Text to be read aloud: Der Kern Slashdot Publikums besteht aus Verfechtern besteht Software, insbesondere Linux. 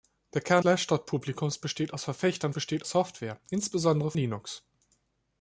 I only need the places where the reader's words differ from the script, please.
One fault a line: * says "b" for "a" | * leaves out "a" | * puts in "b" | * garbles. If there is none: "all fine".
all fine